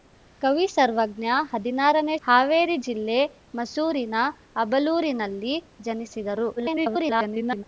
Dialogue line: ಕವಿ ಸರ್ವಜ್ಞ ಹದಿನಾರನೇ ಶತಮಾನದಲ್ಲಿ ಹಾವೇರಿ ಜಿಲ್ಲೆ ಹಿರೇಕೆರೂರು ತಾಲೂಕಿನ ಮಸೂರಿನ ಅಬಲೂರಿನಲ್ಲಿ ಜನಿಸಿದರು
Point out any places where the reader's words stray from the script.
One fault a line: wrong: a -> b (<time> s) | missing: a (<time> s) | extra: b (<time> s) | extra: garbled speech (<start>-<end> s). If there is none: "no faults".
missing: ಶತಮಾನದಲ್ಲಿ (2.1 s)
missing: ಹಿರೇಕೆರೂರು ತಾಲೂಕಿನ (3.2 s)
extra: garbled speech (6.6-7.6 s)